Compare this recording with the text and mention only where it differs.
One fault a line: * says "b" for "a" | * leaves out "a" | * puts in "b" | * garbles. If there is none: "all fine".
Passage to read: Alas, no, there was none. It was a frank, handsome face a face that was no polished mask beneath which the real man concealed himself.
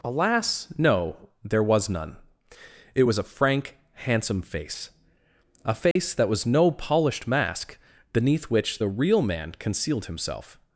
all fine